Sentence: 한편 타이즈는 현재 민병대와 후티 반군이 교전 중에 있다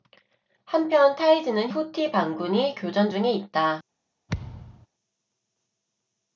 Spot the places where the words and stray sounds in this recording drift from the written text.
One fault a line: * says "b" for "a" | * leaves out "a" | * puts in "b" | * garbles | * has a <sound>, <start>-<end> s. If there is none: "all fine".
* leaves out "현재 민병대와"
* has a thud, 4.3-4.9 s